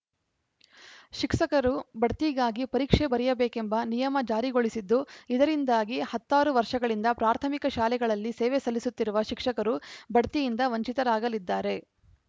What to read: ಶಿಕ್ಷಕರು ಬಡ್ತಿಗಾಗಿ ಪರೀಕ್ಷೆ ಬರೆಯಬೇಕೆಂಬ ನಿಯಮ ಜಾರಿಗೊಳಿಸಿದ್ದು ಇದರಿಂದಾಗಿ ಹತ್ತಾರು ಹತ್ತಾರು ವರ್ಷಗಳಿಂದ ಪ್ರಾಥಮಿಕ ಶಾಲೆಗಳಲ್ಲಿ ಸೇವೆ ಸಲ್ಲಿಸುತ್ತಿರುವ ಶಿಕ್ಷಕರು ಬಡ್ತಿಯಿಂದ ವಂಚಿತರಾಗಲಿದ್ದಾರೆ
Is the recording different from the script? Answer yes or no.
yes